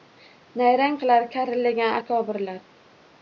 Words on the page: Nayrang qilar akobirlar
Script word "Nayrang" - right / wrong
right